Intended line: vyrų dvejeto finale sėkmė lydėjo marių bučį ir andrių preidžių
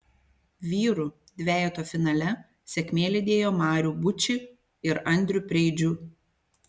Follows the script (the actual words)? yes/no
yes